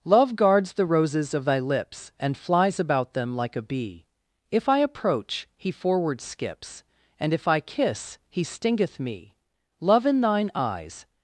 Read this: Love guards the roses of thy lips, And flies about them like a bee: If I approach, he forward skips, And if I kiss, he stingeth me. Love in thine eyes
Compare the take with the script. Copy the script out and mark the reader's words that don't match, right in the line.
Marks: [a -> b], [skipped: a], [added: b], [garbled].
Love guards the roses of thy lips, And flies about them like a bee: If I approach, he forward skips, And if I kiss, he stingeth me. Love in thine eyes